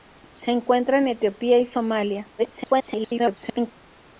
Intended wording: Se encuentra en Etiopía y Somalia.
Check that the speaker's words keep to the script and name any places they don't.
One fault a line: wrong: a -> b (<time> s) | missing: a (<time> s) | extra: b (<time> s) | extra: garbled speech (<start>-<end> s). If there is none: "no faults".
extra: garbled speech (2.4-3.7 s)